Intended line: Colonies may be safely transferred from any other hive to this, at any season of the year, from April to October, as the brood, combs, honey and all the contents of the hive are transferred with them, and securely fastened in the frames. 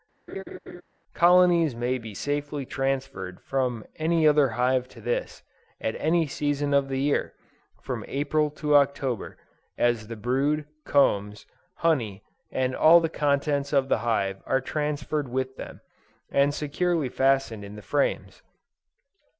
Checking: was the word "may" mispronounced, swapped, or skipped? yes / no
no